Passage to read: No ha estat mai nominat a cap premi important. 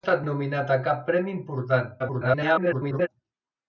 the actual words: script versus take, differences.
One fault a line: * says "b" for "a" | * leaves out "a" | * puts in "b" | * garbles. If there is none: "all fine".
* leaves out "mai"
* garbles